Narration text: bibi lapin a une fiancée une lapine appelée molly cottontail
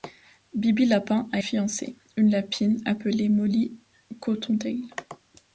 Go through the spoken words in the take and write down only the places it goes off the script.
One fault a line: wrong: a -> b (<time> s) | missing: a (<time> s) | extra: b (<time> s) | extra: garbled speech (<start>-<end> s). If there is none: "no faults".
missing: une (1.4 s)